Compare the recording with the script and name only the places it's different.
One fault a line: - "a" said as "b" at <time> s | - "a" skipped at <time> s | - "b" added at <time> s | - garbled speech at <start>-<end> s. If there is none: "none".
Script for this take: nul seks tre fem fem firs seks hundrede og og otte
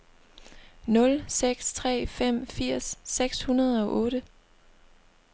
- "fem" skipped at 2.5 s
- "og" skipped at 4.0 s